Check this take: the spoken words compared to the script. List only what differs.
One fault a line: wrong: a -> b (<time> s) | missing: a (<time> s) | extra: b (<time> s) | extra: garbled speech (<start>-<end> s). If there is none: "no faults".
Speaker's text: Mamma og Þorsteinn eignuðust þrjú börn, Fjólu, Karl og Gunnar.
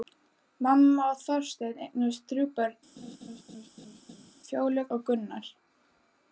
missing: Karl (4.8 s)